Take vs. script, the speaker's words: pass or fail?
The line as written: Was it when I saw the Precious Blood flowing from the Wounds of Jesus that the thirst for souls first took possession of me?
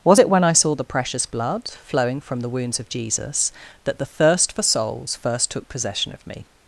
pass